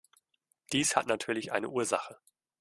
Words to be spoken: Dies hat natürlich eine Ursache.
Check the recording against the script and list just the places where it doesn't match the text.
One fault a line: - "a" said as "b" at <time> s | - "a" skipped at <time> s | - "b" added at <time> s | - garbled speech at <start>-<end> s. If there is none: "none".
none